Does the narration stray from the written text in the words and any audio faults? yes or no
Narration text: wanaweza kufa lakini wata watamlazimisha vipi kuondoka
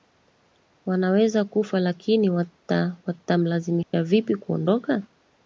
yes